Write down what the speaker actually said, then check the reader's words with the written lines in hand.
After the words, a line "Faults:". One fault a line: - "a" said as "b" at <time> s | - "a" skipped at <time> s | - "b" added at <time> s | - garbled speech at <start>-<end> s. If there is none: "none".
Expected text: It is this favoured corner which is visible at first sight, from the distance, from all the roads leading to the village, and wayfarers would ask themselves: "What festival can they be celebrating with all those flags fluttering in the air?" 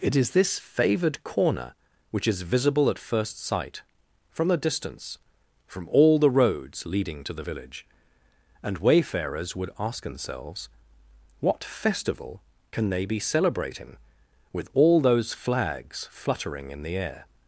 It is this favoured corner which is visible at first sight, from the distance, from all the roads leading to the village, and wayfarers would ask themselves: "What festival can they be celebrating with all those flags fluttering in the air?"
Faults:
none